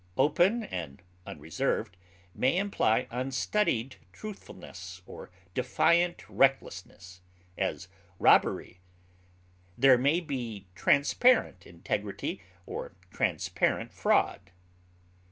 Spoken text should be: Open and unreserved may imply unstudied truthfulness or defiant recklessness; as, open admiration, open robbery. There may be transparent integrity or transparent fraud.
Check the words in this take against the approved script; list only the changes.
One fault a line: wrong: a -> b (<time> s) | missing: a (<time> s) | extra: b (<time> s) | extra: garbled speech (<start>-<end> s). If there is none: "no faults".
missing: open admiration open (7.9 s)